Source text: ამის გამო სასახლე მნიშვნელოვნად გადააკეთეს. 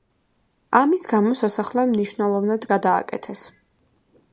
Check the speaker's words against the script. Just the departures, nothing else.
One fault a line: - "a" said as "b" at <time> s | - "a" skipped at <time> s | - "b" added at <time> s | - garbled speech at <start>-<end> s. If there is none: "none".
none